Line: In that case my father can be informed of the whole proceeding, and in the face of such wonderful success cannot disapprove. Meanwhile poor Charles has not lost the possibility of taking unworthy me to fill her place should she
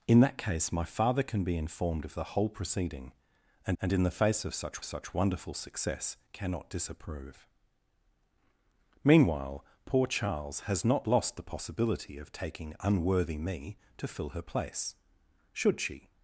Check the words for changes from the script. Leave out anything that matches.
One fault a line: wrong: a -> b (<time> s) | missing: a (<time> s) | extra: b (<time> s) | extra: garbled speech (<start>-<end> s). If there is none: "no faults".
extra: and (3.8 s)
extra: such (4.8 s)